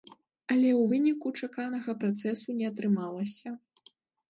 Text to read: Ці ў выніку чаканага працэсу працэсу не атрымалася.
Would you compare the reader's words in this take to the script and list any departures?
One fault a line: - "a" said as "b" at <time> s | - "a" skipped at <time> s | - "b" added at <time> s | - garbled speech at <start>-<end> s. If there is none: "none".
- "Ці" said as "Але" at 0.5 s
- "працэсу" skipped at 2.5 s